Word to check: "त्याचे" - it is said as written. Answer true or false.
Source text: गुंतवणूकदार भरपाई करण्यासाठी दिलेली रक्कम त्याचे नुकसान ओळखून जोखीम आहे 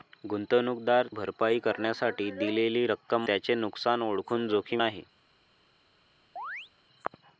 true